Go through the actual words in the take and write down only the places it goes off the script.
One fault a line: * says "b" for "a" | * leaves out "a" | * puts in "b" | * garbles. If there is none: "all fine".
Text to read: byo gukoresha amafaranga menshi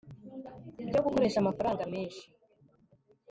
all fine